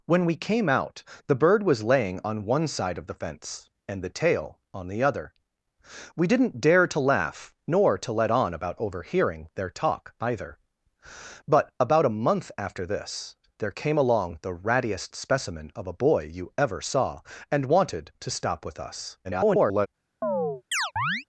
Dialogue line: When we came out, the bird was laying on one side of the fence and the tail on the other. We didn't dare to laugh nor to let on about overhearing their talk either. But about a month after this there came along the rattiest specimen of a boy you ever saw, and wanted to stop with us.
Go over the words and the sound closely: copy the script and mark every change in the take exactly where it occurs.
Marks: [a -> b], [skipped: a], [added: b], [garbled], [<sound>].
When we came out, the bird was laying on one side of the fence and the tail on the other. We didn't dare to laugh nor to let on about overhearing their talk either. But about a month after this there came along the rattiest specimen of a boy you ever saw, and wanted to stop with us. [garbled] [chirp]